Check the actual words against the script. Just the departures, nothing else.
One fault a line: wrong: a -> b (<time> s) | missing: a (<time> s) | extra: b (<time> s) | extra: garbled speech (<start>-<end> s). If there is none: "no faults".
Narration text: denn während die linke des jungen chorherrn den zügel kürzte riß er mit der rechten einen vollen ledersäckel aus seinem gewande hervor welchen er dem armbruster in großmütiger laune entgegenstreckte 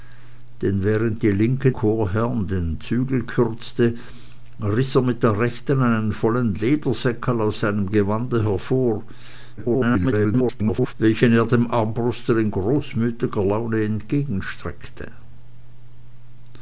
missing: des jungen (1.7 s)
extra: garbled speech (9.6-10.9 s)